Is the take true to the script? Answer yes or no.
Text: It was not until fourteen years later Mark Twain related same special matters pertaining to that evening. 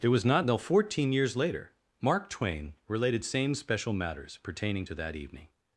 yes